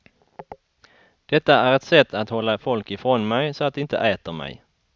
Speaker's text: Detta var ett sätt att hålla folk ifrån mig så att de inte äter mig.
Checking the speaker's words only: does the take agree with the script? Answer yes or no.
no